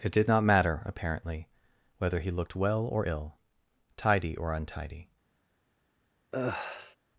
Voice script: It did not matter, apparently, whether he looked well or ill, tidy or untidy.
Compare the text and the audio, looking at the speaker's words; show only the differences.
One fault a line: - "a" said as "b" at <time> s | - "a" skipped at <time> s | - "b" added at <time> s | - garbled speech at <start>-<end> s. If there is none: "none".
none